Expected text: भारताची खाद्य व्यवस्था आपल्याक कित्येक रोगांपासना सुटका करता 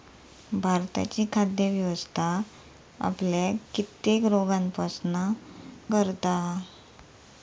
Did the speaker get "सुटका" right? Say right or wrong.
wrong